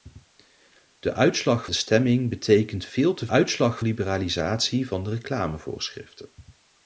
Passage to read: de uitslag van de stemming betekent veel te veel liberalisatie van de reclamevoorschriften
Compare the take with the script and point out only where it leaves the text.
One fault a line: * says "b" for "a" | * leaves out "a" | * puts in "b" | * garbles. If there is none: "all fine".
* leaves out "van"
* says "uitslag" for "veel"